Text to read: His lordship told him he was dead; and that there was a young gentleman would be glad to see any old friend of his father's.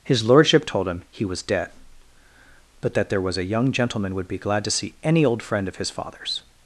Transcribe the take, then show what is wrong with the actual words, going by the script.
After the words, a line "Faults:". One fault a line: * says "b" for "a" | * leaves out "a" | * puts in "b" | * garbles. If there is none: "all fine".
His lordship told him he was dead; but that there was a young gentleman would be glad to see any old friend of his father's.
Faults:
* says "but" for "and"